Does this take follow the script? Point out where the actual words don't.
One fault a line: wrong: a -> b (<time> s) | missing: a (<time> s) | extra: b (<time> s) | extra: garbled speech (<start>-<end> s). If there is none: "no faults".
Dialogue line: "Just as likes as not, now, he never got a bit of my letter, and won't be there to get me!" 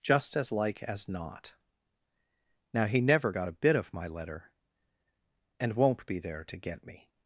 wrong: likes -> like (0.5 s)